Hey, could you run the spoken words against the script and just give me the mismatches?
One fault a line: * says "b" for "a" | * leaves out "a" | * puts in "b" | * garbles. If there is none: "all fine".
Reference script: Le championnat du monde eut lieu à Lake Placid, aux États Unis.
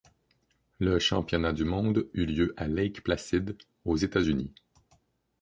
all fine